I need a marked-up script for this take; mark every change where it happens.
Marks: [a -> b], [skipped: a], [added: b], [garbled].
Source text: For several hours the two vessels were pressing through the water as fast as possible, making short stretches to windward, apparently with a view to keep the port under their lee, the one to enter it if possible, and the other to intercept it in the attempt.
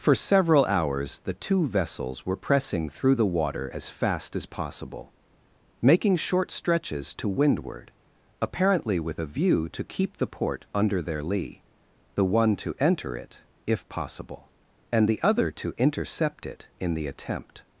For several hours the two vessels were pressing through the water as fast as possible, making short stretches to windward, apparently with a view to keep the port under their lee, the one to enter it if possible, and the other to intercept it in the attempt.